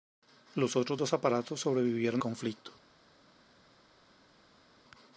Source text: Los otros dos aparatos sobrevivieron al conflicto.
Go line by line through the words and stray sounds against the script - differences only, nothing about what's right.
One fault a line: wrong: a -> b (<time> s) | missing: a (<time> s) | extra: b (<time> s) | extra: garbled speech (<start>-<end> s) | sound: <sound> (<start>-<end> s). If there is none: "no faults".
missing: al (2.2 s)